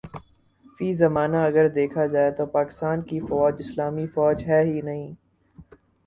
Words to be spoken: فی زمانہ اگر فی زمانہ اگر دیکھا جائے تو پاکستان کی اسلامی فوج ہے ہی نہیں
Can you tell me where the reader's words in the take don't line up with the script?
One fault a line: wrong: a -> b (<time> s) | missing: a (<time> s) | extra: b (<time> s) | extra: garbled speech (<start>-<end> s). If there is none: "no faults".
missing: فی زمانہ اگر (1.7 s)
extra: فوج (3.3 s)